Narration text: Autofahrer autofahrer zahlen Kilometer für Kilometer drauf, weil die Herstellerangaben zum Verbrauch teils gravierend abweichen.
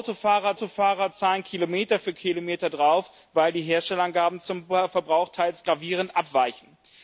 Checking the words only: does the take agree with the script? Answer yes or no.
yes